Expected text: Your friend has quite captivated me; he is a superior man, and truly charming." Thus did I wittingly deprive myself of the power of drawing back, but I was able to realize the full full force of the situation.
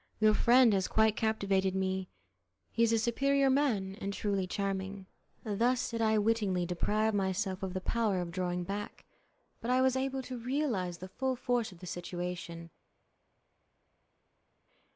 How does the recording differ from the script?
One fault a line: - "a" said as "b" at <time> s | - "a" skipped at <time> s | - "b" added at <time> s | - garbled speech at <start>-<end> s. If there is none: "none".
- "full" skipped at 11.4 s